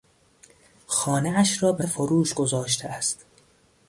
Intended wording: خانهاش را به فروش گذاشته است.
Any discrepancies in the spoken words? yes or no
no